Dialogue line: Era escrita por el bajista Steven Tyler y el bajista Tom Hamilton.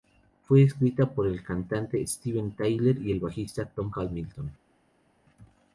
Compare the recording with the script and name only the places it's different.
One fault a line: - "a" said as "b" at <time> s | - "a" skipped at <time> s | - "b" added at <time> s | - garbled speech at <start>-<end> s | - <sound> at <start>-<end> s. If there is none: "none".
- "Era" said as "Fue" at 0.4 s
- "bajista" said as "cantante" at 1.4 s